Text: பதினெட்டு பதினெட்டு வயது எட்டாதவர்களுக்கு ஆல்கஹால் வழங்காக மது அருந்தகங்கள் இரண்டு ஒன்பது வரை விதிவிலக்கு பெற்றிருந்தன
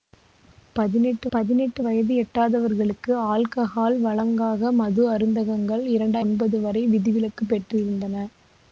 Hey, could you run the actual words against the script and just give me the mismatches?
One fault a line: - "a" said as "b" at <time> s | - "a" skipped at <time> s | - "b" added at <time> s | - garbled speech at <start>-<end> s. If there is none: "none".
none